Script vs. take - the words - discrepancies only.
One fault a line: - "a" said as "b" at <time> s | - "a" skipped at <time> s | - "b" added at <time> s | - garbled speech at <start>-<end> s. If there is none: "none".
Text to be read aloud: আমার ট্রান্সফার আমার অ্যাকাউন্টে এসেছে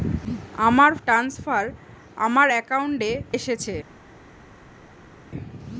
none